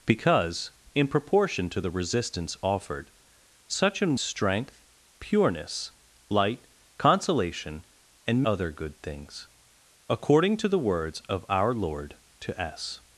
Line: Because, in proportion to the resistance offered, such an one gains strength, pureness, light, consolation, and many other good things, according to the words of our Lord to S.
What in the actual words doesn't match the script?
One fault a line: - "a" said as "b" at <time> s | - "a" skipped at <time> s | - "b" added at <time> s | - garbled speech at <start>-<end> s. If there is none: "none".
- "one gains" skipped at 4.2 s
- "many" skipped at 8.4 s